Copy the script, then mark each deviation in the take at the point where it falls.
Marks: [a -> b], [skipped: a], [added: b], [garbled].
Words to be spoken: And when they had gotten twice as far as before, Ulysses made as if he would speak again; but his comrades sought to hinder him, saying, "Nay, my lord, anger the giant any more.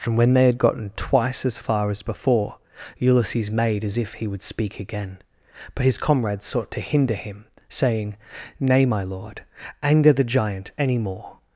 And when they had gotten twice as far as before, Ulysses made as if he would speak again; but his comrades sought to hinder him, saying, "Nay, my lord, anger the giant any more.